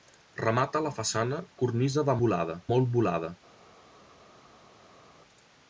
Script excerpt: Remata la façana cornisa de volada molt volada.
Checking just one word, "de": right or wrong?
right